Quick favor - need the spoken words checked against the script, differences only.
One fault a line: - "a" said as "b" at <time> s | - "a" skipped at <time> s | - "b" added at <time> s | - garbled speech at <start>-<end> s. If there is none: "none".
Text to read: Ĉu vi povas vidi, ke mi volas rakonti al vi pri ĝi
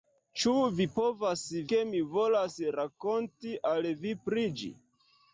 - "vidi" skipped at 1.4 s